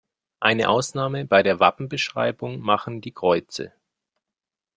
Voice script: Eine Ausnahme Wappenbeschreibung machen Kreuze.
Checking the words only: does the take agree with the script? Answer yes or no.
no